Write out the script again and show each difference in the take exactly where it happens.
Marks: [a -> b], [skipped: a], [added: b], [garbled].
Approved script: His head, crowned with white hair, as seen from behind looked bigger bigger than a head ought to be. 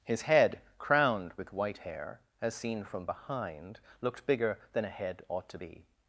His head, crowned with white hair, as seen from behind looked bigger [skipped: bigger] than a head ought to be.